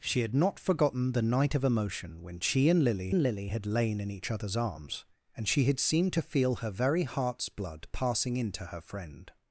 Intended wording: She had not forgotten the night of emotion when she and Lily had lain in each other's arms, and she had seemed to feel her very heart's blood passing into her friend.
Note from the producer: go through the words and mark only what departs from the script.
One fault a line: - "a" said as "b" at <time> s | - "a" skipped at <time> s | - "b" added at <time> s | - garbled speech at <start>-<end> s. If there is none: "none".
- "and Lily" added at 3.1 s